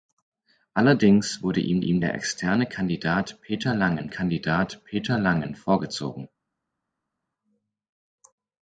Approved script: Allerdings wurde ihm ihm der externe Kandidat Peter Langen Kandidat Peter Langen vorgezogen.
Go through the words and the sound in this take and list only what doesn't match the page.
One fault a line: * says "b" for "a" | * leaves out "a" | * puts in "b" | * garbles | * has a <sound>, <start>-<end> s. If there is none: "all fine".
all fine